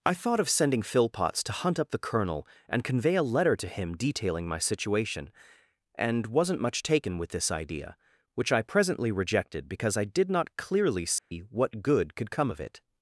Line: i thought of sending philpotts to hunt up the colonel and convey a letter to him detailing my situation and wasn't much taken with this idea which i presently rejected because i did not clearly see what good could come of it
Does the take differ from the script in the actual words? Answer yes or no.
no